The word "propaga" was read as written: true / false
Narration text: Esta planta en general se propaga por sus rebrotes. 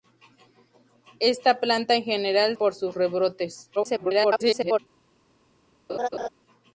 false